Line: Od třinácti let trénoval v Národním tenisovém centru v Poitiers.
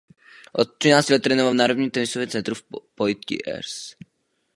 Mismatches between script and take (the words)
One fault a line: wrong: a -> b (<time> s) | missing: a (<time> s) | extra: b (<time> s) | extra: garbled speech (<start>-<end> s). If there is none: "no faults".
no faults